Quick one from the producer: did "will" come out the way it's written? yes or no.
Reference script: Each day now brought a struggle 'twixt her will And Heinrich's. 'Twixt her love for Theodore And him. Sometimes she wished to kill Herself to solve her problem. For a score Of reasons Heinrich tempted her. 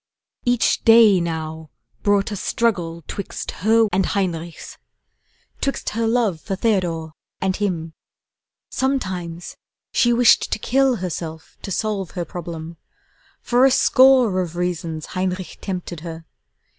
no